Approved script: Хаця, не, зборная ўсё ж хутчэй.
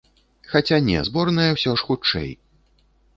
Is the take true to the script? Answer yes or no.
yes